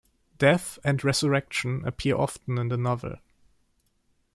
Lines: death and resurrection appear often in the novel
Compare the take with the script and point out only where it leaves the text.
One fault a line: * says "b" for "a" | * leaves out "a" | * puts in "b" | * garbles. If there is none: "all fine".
all fine